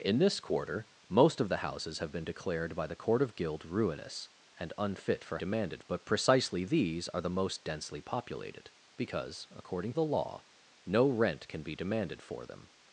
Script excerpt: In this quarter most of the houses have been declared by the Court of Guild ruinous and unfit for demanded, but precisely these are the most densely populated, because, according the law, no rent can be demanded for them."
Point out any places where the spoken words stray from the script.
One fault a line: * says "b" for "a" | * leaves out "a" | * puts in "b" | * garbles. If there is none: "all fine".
all fine